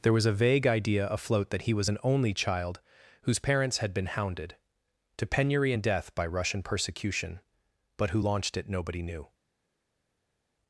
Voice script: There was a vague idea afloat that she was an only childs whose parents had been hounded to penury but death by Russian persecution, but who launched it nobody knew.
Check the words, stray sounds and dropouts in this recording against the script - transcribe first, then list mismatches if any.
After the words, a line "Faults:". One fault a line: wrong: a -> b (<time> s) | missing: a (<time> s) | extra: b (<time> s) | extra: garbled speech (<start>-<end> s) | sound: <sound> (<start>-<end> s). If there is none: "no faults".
There was a vague idea afloat that he was an only child whose parents had been hounded to penury and death by Russian persecution, but who launched it nobody knew.
Faults:
wrong: she -> he (1.6 s)
wrong: childs -> child (2.3 s)
wrong: but -> and (5.7 s)